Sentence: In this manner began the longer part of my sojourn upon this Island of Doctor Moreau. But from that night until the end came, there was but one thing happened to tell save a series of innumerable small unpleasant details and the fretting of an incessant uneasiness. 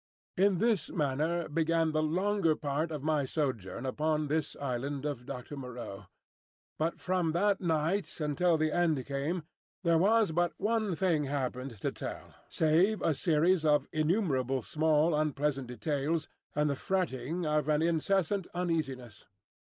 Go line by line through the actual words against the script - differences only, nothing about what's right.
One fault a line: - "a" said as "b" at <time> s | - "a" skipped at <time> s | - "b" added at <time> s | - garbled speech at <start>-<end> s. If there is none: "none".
none